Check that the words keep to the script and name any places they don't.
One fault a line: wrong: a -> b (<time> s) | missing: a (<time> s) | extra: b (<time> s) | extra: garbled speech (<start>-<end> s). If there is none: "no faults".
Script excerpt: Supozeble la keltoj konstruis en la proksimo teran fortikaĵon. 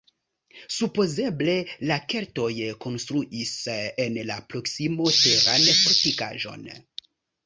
no faults